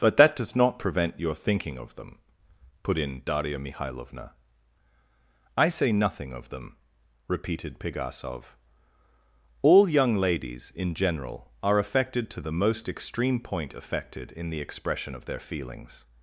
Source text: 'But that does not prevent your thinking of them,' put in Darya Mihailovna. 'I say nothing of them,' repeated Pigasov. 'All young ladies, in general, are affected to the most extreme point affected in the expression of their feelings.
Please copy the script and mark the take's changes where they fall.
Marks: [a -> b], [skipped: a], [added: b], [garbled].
'But that does not prevent your thinking of them,' put in Darya Mihailovna. 'I say nothing of them,' repeated Pigasov. 'All young ladies, in general, are affected to the most extreme point affected in the expression of their feelings.